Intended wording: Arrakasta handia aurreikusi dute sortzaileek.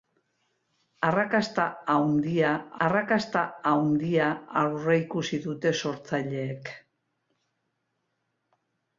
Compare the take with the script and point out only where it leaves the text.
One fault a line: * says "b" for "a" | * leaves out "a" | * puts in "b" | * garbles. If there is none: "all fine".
* puts in "arrakasta handia"